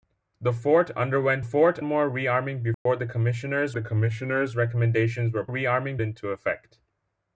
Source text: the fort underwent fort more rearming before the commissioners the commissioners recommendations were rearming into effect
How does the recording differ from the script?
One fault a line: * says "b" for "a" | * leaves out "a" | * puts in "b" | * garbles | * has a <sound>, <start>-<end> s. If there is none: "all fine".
* has a dropout, 2.7-2.9 s